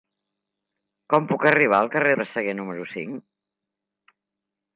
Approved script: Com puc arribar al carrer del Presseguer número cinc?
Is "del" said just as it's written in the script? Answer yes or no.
no